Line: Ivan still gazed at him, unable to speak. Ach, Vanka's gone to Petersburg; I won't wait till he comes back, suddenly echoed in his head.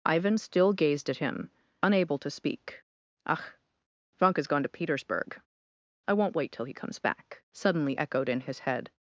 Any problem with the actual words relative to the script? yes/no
no